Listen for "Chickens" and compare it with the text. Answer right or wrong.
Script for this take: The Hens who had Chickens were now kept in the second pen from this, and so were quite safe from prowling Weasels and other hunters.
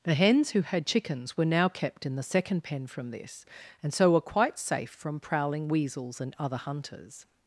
right